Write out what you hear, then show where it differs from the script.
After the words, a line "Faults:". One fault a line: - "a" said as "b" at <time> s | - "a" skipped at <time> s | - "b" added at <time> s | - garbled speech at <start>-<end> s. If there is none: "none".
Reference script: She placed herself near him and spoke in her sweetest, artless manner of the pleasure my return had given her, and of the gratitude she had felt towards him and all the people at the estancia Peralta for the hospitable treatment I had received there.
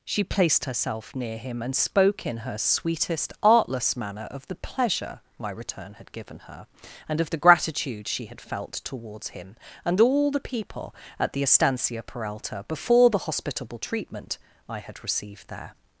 She placed herself near him and spoke in her sweetest, artless manner of the pleasure my return had given her, and of the gratitude she had felt towards him and all the people at the estancia Peralta before the hospitable treatment I had received there.
Faults:
- "for" said as "before" at 12.7 s